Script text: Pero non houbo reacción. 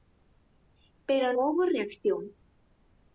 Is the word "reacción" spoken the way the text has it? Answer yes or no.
yes